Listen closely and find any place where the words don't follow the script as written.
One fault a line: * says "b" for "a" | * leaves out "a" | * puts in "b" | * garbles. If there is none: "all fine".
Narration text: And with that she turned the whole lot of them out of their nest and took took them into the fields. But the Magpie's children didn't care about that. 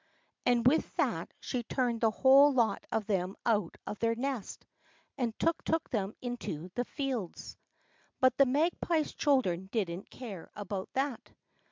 all fine